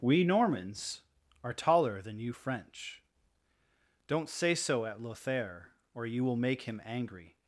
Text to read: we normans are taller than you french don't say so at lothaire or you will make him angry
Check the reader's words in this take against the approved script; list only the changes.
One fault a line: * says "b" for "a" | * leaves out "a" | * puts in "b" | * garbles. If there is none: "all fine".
all fine